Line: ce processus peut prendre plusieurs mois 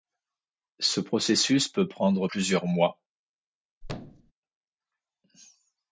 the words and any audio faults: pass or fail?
fail